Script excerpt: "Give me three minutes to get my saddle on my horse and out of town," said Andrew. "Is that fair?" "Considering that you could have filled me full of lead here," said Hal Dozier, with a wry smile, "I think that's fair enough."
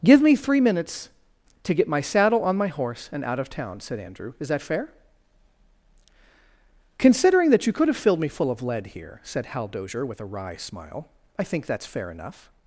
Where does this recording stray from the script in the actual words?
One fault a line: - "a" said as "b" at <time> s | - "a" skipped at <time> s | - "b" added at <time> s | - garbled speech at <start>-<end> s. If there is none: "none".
none